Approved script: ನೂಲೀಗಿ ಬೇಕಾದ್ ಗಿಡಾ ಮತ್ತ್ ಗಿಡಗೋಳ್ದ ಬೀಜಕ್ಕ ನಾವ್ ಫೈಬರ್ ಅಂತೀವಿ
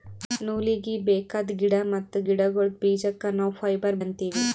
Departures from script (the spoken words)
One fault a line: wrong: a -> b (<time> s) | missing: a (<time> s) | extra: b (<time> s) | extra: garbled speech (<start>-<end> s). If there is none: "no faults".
no faults